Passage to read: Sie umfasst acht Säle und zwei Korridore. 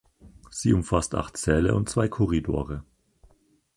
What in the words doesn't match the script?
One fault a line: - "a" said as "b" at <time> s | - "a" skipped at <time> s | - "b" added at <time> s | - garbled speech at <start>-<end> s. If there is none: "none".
none